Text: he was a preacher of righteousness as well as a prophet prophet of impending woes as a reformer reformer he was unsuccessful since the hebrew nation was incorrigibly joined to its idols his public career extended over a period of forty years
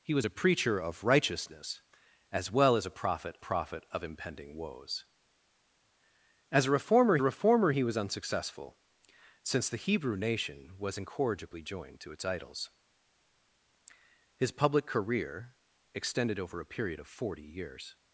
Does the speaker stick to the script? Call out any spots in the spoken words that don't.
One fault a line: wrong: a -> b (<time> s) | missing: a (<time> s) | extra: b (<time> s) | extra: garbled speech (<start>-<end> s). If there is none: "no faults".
no faults